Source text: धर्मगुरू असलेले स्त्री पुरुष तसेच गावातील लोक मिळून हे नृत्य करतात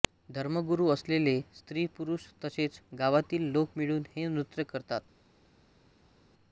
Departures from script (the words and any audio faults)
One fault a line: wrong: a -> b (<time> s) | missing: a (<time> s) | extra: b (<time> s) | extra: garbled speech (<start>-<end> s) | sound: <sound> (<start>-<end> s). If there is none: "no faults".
no faults